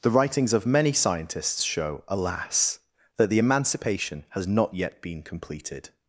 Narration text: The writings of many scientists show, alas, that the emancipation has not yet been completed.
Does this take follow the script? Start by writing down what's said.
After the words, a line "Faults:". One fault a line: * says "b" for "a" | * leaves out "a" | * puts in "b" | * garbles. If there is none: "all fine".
The writings of many scientists show, alas, that the emancipation has not yet been completed.
Faults:
all fine